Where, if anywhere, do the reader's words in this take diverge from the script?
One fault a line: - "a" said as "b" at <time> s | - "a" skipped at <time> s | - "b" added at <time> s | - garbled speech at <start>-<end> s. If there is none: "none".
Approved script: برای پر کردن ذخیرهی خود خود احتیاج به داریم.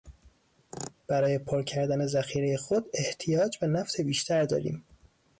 - "خود" skipped at 2.9 s
- "نفت بیشتر" added at 3.7 s